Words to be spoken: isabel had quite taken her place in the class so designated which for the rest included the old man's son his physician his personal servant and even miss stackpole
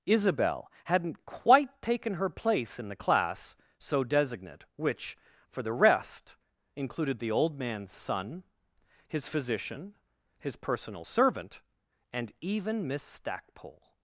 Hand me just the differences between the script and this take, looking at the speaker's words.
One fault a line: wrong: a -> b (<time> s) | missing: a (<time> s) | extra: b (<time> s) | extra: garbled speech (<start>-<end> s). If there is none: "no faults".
wrong: had -> hadn't (0.8 s)
wrong: designated -> designate (4.0 s)